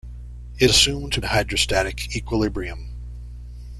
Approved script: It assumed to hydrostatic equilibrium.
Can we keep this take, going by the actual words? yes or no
yes